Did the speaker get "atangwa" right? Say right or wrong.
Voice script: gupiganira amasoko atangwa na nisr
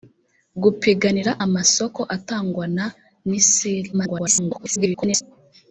right